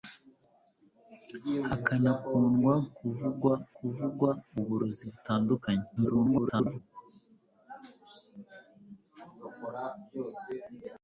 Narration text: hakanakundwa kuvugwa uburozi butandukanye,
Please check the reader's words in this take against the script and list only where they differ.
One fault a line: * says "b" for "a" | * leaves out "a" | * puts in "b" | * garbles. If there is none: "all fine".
* puts in "kuvugwa"
* garbles